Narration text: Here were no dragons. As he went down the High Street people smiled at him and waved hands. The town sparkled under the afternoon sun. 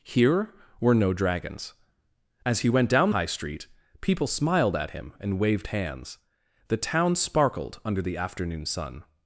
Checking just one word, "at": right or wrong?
right